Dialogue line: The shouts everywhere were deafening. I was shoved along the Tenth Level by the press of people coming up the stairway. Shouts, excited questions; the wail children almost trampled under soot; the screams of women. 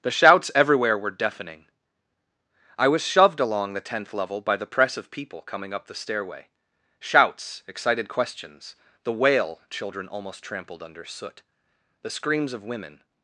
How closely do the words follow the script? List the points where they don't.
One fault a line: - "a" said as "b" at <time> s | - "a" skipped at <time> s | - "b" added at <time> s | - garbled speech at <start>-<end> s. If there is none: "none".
none